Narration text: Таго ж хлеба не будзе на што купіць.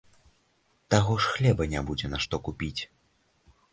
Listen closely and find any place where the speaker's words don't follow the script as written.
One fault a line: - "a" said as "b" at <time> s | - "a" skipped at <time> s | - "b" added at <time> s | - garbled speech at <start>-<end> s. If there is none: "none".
none